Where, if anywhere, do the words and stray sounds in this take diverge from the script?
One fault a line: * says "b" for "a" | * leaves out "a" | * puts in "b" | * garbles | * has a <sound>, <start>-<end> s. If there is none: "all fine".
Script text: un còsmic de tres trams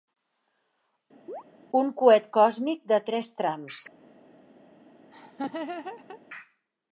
* has a chirp, 1.3-1.4 s
* puts in "coet"
* has a laugh, 5.1-6.2 s